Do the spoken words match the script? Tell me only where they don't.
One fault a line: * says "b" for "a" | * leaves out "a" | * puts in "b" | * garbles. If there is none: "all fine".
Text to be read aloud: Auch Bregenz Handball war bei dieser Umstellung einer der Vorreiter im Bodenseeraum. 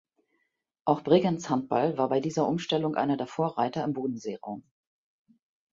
all fine